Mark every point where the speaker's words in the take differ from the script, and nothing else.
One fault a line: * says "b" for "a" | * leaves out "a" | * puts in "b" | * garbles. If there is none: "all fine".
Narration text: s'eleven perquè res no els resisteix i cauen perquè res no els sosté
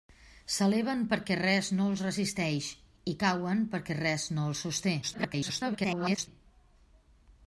* garbles